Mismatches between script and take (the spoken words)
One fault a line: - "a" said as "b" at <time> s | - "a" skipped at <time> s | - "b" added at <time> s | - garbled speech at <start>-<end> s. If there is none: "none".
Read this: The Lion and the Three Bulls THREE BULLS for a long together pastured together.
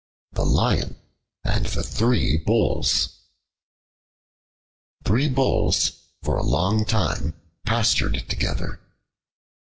- "together" said as "time" at 6.8 s